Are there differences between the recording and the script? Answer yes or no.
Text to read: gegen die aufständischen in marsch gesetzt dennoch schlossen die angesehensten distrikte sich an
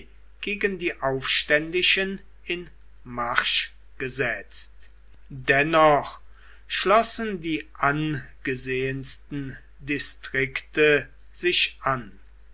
no